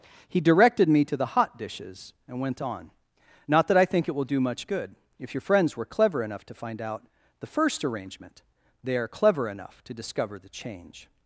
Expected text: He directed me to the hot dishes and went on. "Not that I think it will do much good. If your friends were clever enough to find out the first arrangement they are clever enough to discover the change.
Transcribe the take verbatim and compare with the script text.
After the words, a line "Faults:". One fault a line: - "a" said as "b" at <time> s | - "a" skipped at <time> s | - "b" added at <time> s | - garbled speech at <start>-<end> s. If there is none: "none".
He directed me to the hot dishes and went on. "Not that I think it will do much good. If your friends were clever enough to find out the first arrangement they are clever enough to discover the change.
Faults:
none